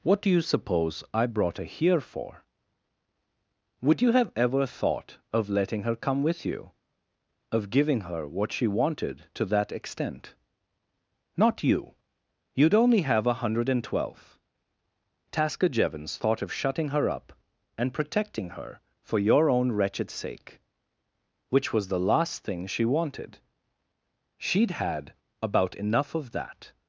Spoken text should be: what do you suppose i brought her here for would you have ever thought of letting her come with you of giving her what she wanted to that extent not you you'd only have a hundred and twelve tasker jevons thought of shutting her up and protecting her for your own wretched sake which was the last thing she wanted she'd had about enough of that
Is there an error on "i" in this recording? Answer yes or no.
no